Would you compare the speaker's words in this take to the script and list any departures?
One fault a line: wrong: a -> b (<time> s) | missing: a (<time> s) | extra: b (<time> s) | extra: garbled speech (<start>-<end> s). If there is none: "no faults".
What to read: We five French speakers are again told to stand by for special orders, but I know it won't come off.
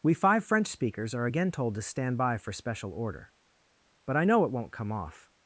wrong: orders -> order (2.9 s)